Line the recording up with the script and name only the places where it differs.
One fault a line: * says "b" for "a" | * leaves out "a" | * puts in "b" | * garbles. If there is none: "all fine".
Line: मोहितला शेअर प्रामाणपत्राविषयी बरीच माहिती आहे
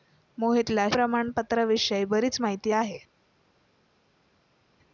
* leaves out "शेअर"